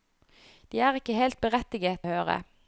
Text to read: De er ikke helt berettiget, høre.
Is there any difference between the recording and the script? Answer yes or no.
no